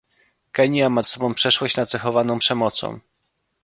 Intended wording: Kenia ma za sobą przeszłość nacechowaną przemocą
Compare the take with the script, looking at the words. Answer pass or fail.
fail